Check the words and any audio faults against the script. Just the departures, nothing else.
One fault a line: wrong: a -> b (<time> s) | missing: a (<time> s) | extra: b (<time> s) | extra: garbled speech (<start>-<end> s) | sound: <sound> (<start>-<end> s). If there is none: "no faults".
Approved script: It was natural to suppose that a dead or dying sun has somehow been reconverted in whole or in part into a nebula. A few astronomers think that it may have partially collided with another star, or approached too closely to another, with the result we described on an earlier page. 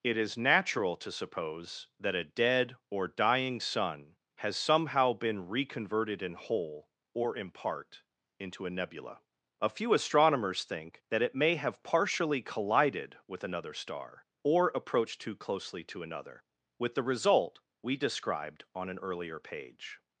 wrong: was -> is (0.2 s)